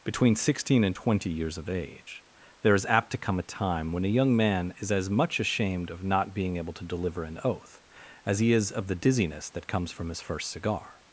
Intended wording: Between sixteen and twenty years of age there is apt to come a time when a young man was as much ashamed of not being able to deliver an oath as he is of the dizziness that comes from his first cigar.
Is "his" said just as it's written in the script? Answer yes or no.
yes